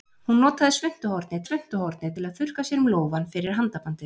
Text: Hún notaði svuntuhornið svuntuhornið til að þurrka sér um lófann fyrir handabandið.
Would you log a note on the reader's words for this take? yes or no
no